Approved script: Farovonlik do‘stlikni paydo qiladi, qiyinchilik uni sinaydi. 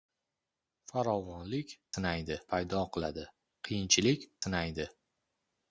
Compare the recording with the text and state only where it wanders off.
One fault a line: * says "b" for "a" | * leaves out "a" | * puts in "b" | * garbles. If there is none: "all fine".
* says "sinaydi" for "do‘stlikni"
* leaves out "uni"